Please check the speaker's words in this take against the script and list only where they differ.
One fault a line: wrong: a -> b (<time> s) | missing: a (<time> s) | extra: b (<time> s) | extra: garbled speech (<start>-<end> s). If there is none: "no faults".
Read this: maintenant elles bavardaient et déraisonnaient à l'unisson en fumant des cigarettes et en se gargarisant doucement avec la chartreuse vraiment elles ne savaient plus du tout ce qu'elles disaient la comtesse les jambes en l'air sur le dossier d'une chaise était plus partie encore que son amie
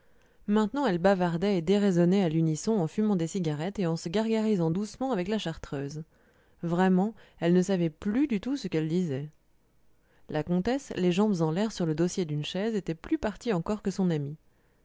no faults